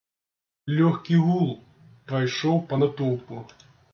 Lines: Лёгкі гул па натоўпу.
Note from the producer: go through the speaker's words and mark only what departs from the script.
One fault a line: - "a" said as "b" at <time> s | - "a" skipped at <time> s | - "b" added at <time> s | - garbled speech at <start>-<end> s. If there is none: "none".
- "прайшоў" added at 2.1 s